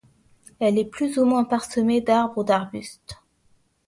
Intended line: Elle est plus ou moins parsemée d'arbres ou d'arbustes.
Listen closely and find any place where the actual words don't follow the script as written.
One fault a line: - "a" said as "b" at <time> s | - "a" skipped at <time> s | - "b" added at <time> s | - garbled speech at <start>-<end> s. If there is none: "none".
none